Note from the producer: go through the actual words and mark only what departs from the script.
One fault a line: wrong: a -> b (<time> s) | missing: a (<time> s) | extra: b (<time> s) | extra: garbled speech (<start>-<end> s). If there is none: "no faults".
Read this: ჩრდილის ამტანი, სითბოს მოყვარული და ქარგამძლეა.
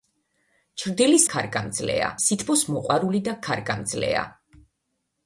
wrong: ამტანი -> ქარგამძლეა (1.3 s)